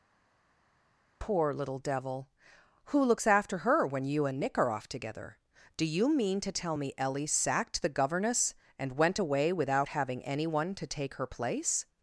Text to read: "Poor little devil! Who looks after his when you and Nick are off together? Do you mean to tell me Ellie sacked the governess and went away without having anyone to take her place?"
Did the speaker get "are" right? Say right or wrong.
right